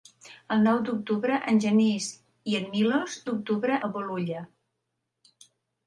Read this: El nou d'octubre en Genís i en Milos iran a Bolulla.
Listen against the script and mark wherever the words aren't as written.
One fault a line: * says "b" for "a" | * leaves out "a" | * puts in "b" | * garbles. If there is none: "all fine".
* says "d'octubre" for "iran"